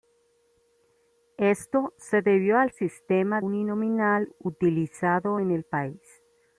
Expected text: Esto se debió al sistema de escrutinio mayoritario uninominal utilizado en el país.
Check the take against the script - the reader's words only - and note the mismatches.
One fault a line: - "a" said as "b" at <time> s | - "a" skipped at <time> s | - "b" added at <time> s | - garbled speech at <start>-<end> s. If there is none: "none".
- "de escrutinio mayoritario" skipped at 3.4 s